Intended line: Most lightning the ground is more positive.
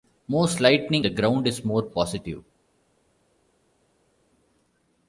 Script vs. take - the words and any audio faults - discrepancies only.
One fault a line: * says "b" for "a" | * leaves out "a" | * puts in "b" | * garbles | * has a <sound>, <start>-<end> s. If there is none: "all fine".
all fine